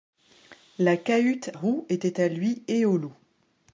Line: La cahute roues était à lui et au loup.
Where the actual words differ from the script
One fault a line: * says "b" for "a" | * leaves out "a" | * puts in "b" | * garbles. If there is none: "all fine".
all fine